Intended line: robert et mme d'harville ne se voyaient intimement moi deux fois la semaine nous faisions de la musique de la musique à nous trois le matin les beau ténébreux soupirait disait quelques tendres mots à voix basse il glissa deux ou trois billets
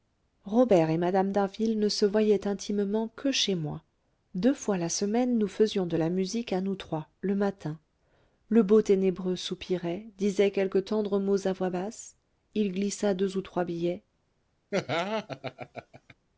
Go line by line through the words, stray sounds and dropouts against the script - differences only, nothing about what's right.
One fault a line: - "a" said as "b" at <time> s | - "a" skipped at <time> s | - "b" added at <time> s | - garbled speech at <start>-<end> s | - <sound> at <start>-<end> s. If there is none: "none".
- "que chez" added at 3.1 s
- "de la musique" skipped at 6.5 s
- "les" said as "le" at 8.5 s
- laugh at 14.7-16.1 s